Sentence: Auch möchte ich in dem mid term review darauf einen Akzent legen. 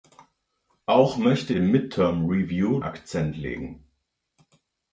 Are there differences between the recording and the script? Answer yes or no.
yes